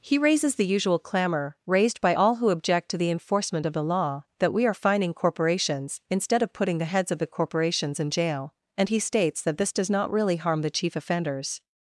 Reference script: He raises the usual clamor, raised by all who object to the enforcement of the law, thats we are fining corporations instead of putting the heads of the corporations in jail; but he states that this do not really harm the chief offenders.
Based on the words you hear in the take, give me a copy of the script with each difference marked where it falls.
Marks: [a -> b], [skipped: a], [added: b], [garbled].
He raises the usual clamor, raised by all who object to the enforcement of the law, [thats -> that] we are fining corporations instead of putting the heads of the corporations in jail; [but -> and] he states that this [do -> does] not really harm the chief offenders.